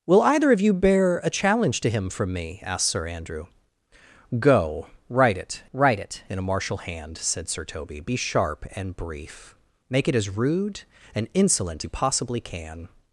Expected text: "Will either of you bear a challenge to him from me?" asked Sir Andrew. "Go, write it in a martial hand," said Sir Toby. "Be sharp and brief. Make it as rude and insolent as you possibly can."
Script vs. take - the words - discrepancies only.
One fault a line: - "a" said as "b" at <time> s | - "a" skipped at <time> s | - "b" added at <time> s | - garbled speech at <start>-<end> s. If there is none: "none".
- "write it" added at 5.7 s
- "as" skipped at 11.9 s